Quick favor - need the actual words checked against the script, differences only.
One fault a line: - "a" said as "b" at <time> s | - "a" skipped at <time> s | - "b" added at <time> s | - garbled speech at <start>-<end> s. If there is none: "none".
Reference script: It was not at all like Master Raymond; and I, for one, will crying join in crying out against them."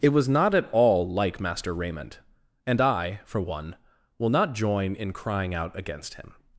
- "crying" said as "not" at 4.3 s
- "them" said as "him" at 6.1 s